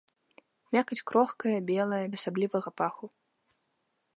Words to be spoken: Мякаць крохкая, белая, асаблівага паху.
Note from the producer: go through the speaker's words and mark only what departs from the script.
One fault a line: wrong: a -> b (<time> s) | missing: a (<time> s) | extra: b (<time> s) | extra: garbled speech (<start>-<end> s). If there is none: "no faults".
no faults